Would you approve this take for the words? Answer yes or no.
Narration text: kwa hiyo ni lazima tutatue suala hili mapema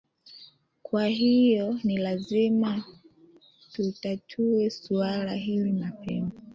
yes